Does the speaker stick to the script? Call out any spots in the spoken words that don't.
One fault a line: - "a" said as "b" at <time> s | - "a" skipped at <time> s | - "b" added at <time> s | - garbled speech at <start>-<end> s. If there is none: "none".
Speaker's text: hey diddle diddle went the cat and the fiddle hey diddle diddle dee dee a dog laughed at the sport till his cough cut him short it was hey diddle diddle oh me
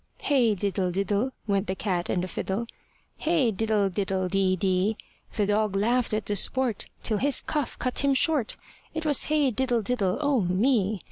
- "a" said as "the" at 5.3 s